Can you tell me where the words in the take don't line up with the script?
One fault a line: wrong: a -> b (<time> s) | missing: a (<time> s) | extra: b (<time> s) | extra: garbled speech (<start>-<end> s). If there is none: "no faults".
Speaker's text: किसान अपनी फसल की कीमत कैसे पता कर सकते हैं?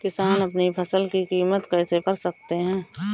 missing: पता (2.0 s)